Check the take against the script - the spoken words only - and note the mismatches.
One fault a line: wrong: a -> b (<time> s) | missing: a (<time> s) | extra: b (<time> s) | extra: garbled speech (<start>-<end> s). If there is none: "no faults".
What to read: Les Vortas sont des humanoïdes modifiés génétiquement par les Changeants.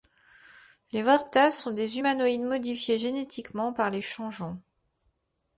no faults